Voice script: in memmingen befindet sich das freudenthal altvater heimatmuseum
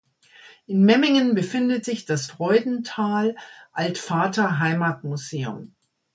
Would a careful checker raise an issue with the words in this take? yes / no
no